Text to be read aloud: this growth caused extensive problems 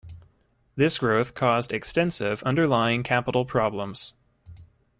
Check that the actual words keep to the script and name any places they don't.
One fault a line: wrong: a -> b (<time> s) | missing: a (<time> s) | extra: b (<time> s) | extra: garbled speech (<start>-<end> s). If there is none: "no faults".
extra: underlying capital (2.4 s)